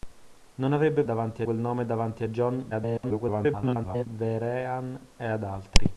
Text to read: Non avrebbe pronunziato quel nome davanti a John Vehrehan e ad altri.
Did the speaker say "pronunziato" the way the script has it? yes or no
no